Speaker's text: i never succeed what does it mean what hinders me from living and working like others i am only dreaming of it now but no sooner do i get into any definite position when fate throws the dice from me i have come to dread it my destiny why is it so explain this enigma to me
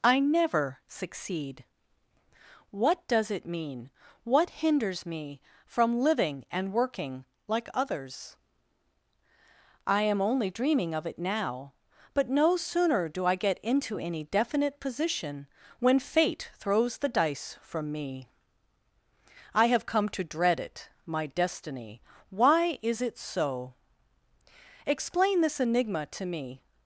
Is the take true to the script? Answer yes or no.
yes